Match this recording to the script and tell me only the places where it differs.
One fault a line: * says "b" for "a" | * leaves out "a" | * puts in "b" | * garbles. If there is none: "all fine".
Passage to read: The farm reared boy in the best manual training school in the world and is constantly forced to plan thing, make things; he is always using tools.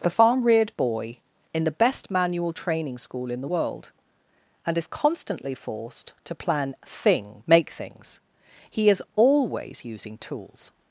all fine